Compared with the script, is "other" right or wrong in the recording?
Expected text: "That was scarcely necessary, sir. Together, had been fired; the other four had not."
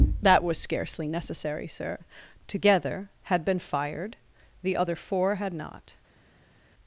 right